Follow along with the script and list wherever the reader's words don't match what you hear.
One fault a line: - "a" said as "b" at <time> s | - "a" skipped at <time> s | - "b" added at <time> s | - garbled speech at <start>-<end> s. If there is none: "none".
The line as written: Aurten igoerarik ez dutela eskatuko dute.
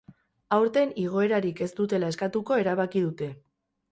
- "erabaki" added at 2.6 s